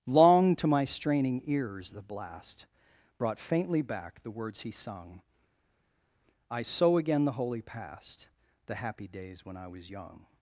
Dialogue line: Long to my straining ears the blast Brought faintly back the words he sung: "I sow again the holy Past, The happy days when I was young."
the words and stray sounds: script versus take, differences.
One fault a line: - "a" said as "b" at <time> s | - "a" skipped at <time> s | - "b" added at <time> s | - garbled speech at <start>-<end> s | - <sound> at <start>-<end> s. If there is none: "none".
none